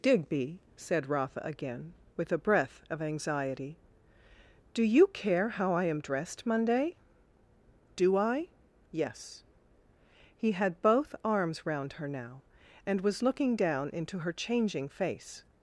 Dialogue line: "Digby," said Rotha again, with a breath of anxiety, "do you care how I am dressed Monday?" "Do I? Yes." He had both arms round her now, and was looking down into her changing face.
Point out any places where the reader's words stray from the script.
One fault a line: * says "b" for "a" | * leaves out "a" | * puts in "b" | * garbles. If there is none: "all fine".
all fine